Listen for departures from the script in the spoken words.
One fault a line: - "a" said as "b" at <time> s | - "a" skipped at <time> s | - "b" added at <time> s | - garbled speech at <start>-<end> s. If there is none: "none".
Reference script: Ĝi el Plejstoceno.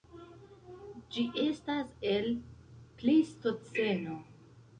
- "estas" added at 1.4 s